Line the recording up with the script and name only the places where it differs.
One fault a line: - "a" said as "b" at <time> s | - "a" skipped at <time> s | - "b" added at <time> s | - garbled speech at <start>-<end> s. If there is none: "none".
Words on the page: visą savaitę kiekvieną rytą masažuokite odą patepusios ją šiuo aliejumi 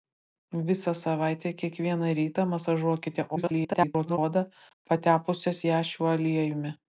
- garbled speech at 3.4-4.2 s